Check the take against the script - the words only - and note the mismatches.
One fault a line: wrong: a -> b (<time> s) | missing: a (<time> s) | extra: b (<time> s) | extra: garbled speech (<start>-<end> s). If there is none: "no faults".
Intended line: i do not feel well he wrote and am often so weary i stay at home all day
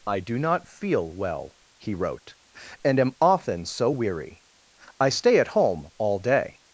no faults